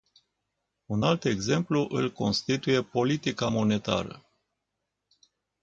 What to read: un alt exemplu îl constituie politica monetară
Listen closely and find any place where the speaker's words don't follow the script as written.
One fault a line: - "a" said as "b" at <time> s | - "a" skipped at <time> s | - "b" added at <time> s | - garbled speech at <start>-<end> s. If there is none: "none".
none